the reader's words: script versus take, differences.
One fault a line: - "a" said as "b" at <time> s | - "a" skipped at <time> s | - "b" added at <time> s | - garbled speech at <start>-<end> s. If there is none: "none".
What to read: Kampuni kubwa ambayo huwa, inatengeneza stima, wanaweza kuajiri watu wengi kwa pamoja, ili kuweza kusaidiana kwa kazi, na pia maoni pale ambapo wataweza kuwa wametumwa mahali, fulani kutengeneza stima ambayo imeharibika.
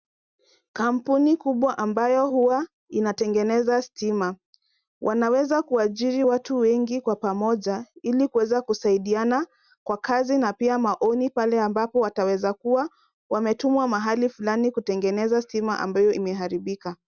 none